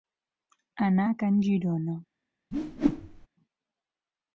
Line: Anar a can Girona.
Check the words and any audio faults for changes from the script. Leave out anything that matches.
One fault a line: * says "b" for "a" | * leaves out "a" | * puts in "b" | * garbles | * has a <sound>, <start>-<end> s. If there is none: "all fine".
* has a whoosh, 2.5-3.3 s